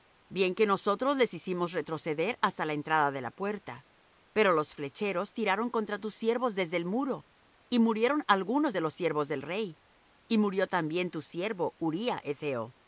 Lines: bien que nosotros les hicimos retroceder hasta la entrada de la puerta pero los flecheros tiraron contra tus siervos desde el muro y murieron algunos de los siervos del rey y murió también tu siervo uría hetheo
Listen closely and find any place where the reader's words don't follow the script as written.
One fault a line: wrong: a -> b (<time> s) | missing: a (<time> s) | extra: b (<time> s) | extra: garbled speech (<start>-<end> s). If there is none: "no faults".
no faults